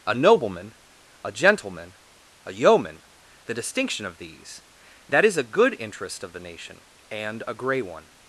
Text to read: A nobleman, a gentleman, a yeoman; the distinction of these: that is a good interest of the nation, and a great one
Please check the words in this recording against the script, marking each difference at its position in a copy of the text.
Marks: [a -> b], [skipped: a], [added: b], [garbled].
A nobleman, a gentleman, a yeoman; the distinction of these: that is a good interest of the nation, and a [great -> grey] one